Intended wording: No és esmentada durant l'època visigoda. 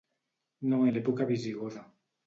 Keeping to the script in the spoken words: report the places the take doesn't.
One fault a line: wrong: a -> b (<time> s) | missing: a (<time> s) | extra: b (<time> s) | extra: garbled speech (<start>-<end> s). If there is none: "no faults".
missing: és esmentada durant (0.8 s)